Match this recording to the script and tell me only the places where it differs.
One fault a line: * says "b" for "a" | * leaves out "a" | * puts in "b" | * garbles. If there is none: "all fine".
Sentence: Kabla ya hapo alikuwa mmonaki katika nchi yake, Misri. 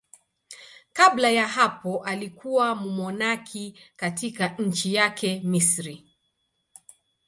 all fine